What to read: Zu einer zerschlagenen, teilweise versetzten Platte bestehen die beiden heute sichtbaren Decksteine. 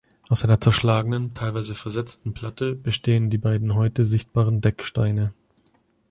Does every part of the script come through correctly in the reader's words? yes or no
no